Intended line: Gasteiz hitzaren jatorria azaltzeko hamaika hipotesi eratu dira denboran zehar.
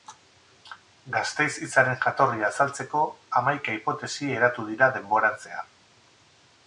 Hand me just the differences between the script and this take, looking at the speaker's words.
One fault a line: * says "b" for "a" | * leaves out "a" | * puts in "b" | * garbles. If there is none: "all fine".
all fine